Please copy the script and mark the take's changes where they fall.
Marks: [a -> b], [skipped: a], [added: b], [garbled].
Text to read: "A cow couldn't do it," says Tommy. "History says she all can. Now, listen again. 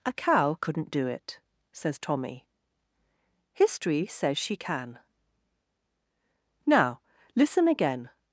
"A cow couldn't do it," says Tommy. "History says she [skipped: all] can. Now, listen again.